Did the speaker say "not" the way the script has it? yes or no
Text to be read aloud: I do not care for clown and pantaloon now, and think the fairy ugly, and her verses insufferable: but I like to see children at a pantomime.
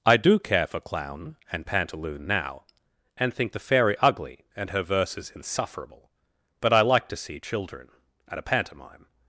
no